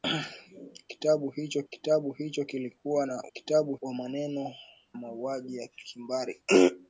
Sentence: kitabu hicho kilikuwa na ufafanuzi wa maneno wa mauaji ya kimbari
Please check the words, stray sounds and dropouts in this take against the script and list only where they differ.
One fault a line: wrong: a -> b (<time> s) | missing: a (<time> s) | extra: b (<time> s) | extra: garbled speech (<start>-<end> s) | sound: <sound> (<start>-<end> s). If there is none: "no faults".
extra: kitabu hicho (1.7 s)
wrong: ufafanuzi -> kitabu (3.3 s)
missing: wa (4.5 s)